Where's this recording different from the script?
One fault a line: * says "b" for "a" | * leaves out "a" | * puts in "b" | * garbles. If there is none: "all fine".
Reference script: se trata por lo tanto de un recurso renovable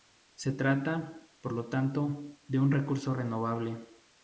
all fine